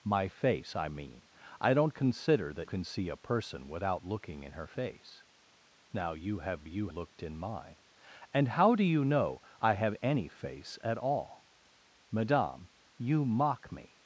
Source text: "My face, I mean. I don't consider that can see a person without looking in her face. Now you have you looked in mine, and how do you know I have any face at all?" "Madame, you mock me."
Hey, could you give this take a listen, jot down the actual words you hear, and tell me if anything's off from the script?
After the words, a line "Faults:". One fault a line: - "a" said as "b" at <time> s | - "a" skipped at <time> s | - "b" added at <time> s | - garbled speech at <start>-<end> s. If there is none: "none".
"My face, I mean. I don't consider that can see a person without looking in her face. Now you have you looked in mine, and how do you know I have any face at all?" "Madame, you mock me."
Faults:
none